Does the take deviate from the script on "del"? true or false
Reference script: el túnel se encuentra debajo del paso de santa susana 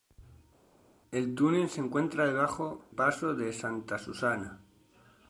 true